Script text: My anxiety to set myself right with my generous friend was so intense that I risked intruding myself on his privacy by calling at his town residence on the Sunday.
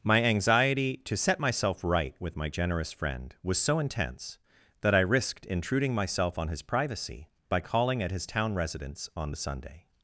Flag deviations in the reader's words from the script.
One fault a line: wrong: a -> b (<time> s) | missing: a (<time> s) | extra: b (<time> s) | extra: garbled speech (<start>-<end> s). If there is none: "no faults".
no faults